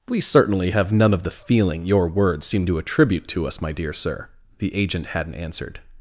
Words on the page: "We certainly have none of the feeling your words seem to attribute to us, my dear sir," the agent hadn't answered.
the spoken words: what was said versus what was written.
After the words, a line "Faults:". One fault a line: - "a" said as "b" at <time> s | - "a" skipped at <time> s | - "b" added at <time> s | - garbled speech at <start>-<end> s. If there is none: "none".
"We certainly have none of the feeling your words seem to attribute to us, my dear sir," the agent hadn't answered.
Faults:
none